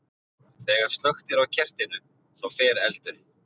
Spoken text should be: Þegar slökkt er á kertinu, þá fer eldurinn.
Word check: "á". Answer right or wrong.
right